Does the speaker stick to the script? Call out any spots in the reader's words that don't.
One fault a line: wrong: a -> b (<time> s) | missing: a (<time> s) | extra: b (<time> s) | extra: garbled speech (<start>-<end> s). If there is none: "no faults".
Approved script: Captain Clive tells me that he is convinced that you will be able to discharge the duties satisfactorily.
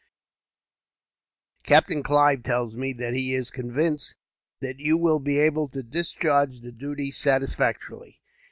no faults